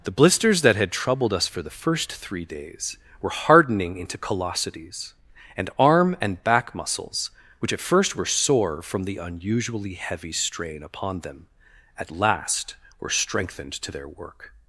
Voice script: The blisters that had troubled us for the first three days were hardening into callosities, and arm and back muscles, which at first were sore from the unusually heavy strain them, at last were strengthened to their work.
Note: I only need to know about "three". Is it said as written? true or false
true